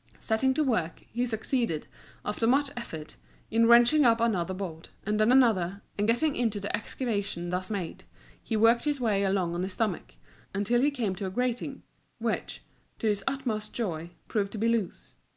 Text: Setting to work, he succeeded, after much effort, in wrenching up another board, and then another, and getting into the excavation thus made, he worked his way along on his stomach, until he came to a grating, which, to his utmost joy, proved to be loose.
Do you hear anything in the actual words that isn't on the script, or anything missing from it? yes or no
no